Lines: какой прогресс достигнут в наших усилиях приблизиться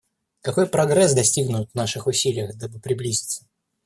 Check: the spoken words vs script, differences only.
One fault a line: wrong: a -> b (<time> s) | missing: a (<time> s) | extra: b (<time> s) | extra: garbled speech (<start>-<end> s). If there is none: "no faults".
extra: дабы (2.5 s)